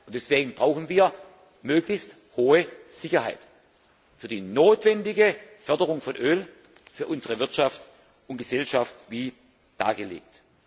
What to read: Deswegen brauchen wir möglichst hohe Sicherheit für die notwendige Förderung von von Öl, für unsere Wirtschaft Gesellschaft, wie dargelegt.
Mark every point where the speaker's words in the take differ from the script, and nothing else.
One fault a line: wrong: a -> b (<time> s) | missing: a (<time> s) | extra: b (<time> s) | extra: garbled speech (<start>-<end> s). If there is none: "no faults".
missing: von (6.2 s)
extra: und (8.3 s)